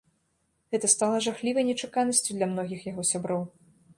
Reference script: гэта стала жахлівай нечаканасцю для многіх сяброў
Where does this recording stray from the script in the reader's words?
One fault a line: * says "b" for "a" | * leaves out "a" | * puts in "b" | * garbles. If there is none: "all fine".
* puts in "яго"